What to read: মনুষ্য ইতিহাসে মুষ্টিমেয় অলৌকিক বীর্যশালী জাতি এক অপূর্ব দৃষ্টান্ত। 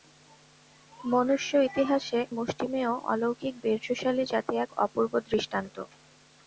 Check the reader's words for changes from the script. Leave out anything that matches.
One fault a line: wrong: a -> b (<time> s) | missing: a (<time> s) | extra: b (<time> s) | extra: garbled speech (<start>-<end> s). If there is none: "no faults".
no faults